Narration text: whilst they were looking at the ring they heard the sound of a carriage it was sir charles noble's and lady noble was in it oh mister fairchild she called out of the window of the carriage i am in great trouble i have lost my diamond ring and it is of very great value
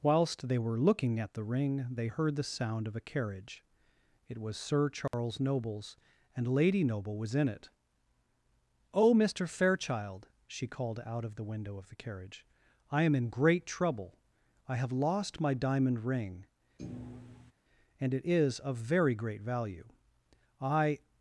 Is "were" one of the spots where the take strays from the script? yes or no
no